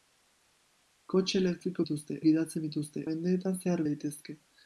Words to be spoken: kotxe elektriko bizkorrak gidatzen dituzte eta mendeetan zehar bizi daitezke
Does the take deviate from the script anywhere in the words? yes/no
yes